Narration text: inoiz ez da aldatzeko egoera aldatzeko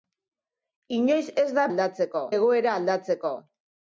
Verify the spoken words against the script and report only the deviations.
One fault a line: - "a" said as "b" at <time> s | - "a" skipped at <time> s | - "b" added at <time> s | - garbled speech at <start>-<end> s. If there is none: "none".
none